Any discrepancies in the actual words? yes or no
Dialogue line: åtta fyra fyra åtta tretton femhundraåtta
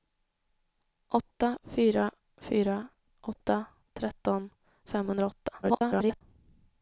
yes